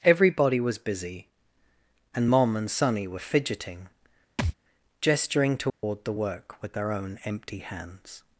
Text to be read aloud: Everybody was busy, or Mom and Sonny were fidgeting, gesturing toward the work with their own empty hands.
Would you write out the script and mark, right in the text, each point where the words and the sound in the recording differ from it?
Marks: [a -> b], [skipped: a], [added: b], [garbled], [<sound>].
Everybody was busy, [or -> and] Mom and Sonny were fidgeting, [thud] gesturing toward [dropout] the work with their own empty hands.